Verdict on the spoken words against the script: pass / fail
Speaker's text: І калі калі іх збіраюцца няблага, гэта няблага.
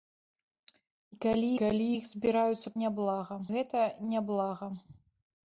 pass